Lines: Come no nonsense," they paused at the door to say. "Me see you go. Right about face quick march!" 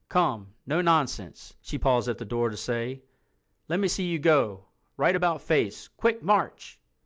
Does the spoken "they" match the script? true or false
false